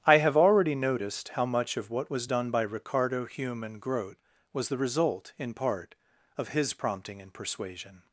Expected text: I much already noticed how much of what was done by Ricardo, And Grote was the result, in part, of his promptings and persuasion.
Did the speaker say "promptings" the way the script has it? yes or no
no